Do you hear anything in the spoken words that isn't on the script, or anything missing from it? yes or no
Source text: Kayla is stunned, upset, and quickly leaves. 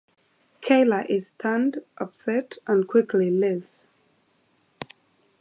no